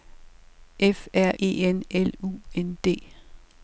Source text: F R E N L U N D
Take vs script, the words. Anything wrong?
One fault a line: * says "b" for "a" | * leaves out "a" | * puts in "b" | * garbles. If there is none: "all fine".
all fine